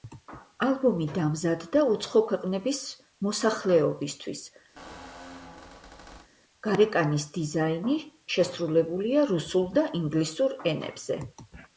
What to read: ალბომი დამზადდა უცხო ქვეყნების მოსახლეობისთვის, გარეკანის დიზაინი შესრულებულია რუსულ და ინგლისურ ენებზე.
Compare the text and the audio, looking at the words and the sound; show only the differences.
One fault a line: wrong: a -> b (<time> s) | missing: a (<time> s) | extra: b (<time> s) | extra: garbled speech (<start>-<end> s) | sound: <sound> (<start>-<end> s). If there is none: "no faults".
sound: squeak (4.8-6.3 s)